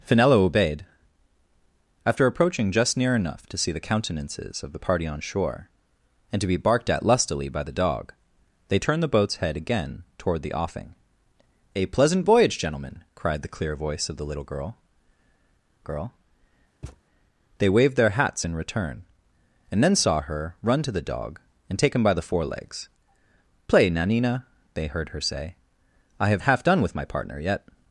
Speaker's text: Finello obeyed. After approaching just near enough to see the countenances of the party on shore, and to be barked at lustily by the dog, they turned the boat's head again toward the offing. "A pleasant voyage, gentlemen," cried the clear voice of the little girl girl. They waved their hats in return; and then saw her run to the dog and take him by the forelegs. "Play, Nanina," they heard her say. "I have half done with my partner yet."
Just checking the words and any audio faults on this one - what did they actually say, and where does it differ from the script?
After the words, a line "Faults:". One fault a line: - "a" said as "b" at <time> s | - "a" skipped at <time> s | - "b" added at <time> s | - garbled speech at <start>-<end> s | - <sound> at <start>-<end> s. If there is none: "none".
Finello obeyed. After approaching just near enough to see the countenances of the party on shore, and to be barked at lustily by the dog, they turned the boat's head again toward the offing. "A pleasant voyage, gentlemen," cried the clear voice of the little girl girl. They waved their hats in return; and then saw her run to the dog and take him by the forelegs. "Play, Nanina," they heard her say. "I have half done with my partner yet."
Faults:
- thud at 16.8-17.0 s